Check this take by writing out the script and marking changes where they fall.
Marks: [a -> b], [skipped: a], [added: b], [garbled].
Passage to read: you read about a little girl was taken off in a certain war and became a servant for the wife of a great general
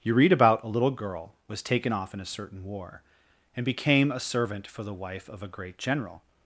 you read about a little girl was taken off in a certain war and became a servant for the wife of a great general